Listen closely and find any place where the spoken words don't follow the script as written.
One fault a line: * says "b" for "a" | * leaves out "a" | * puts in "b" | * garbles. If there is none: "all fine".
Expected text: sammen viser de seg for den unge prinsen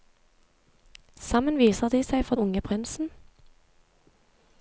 * leaves out "den"